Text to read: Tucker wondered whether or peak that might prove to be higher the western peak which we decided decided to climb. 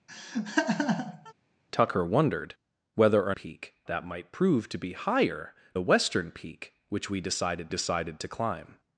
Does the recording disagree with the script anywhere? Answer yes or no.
no